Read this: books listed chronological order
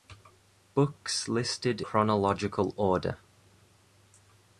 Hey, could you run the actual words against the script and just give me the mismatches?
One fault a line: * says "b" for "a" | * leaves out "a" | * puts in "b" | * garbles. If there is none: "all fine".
all fine